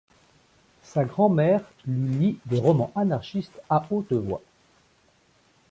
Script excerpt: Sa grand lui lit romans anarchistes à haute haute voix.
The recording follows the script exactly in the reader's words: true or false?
false